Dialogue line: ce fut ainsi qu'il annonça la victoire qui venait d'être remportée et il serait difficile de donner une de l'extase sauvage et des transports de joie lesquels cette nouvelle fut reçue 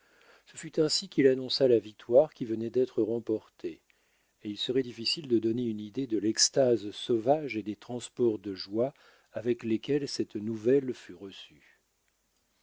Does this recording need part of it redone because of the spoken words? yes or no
yes